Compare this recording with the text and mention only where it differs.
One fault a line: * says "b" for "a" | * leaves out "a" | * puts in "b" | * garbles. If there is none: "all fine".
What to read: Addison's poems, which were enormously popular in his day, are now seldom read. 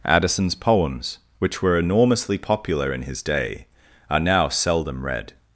all fine